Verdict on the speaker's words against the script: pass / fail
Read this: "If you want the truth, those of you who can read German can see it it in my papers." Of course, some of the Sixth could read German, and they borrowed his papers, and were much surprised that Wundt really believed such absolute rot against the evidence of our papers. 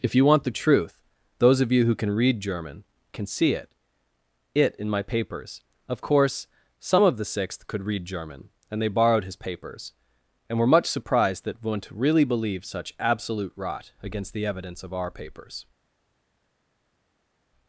pass